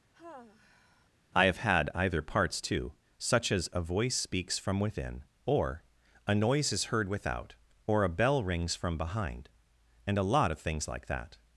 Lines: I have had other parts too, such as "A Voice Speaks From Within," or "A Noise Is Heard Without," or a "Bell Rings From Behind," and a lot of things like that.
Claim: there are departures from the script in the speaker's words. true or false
true